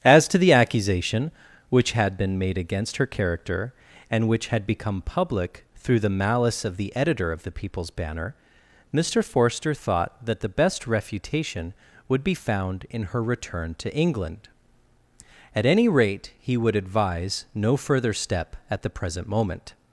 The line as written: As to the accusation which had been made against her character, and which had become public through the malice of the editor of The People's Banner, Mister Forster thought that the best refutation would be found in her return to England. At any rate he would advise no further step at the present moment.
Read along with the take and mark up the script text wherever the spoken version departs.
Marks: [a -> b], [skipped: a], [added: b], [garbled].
As to the accusation which had been made against her character, and which had become public through the malice of the editor of The People's Banner, Mister Forster thought that the best refutation would be found in her return to England. At any rate he would advise no further step at the present moment.